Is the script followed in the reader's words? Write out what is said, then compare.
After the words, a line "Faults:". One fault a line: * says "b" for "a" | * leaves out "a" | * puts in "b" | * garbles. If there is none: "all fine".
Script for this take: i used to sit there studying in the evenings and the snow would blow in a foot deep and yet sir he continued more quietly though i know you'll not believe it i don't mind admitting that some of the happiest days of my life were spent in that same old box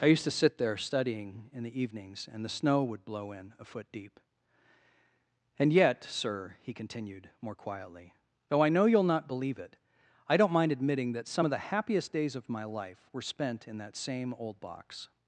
i used to sit there studying in the evenings and the snow would blow in a foot deep and yet sir he continued more quietly though i know you'll not believe it i don't mind admitting that some of the happiest days of my life were spent in that same old box
Faults:
all fine